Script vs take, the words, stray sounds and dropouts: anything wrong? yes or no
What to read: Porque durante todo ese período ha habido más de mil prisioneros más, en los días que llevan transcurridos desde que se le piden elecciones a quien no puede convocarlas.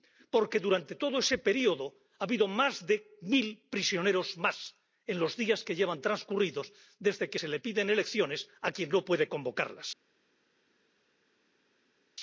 no